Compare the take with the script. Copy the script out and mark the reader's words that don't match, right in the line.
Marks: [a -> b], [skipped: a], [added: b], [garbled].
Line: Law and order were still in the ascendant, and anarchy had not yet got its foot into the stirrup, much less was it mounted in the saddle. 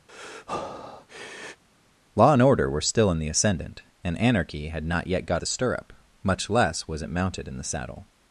Law and order were still in the ascendant, and anarchy had not yet got [skipped: its foot into] the stirrup, much less was it mounted in the saddle.